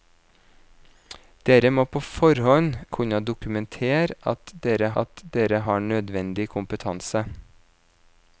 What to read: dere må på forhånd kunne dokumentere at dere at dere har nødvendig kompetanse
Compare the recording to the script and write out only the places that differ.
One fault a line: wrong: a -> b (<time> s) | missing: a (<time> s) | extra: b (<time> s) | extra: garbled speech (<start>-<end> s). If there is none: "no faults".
no faults